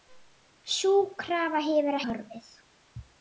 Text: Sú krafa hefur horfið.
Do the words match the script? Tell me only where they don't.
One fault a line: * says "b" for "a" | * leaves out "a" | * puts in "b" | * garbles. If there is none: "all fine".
all fine